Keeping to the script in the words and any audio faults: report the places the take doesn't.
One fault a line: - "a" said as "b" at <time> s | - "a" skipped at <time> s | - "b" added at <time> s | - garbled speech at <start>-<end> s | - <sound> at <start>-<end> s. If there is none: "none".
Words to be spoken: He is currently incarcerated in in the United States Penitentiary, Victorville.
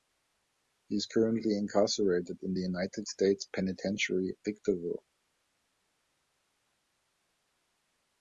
- "in" skipped at 2.5 s